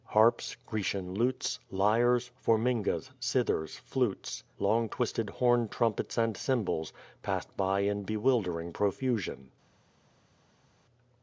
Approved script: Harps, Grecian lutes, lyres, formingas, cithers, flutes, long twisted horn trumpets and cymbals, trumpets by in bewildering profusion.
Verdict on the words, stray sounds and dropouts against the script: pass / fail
fail